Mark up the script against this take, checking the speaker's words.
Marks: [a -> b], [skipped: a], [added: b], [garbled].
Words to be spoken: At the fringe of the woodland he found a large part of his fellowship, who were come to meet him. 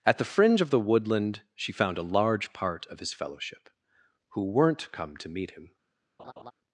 At the fringe of the woodland [he -> she] found a large part of his fellowship, who [were -> weren't] come to meet him.